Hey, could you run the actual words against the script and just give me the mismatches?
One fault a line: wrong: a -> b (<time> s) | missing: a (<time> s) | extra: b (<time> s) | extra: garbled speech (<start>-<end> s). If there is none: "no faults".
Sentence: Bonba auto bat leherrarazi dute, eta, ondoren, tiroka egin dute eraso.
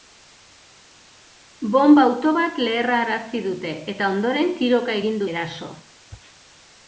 missing: dute (5.2 s)